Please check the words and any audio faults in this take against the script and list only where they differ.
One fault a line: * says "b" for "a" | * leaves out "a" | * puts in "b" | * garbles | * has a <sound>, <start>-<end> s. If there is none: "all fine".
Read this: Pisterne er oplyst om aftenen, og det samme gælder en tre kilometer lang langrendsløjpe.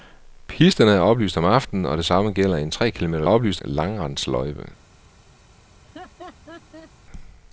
* says "oplyst" for "lang"
* has a laugh, 5.7-6.9 s